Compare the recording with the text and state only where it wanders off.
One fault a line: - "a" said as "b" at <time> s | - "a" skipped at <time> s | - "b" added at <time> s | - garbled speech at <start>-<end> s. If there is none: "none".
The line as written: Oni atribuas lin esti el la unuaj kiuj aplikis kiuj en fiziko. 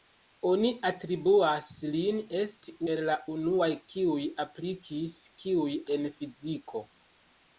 none